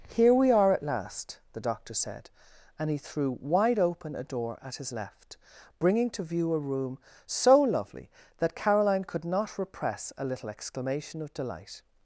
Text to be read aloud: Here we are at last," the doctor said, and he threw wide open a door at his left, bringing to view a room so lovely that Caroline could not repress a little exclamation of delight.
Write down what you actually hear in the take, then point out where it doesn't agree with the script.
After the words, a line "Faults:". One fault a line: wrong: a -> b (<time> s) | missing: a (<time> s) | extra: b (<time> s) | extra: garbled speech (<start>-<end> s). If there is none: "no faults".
Here we are at last," the doctor said, and he threw wide open a door at his left, bringing to view a room so lovely that Caroline could not repress a little exclamation of delight.
Faults:
no faults